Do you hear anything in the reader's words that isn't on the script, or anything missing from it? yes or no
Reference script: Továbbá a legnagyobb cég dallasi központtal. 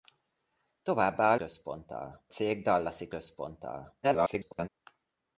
yes